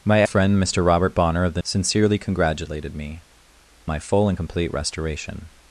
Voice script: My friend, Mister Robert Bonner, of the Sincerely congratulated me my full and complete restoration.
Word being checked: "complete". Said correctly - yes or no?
yes